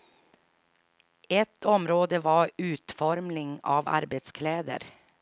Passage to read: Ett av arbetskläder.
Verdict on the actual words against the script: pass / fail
fail